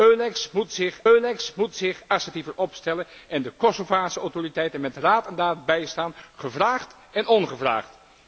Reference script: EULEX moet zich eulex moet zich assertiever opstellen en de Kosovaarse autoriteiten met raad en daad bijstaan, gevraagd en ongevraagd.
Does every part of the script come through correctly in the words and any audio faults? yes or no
yes